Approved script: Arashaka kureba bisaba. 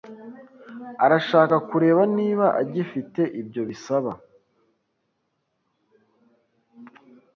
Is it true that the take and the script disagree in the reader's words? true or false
true